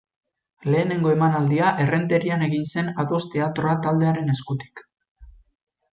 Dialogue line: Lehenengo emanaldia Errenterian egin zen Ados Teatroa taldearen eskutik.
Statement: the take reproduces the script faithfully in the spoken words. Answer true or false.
true